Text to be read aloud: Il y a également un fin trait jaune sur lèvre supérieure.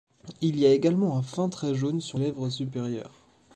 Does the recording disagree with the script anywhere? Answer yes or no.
no